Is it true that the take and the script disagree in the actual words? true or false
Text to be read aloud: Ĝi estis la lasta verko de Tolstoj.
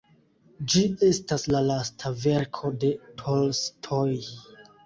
true